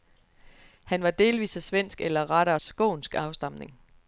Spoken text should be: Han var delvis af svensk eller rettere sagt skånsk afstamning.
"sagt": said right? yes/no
no